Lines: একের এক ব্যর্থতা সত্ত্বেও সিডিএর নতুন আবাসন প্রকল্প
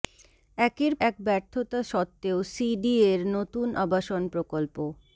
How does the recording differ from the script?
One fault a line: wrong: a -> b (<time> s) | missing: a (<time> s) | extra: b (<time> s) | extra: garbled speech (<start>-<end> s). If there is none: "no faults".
no faults